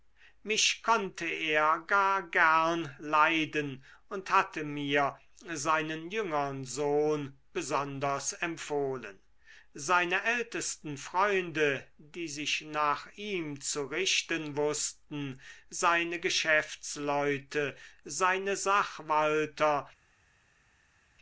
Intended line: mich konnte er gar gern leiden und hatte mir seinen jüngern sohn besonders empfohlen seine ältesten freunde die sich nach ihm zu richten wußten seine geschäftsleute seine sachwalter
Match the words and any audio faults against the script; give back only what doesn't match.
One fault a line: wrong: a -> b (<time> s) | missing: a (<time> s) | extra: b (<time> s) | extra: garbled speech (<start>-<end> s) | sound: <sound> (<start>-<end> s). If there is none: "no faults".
no faults